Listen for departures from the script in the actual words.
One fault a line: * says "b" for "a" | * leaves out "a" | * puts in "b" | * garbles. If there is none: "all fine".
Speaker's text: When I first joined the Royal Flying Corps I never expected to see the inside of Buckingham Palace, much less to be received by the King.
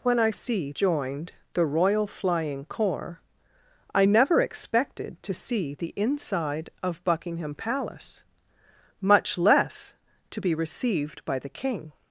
* says "see" for "first"